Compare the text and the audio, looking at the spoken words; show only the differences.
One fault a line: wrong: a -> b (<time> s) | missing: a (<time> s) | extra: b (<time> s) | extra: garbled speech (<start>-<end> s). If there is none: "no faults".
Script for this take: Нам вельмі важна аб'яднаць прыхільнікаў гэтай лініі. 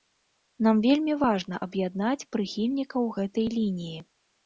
no faults